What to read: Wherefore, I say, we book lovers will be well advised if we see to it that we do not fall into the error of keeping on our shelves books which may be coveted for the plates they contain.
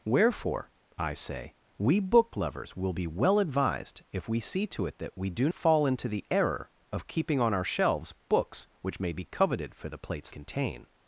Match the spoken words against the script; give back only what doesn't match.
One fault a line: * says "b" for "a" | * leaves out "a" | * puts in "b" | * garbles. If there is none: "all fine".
* leaves out "not"
* leaves out "they"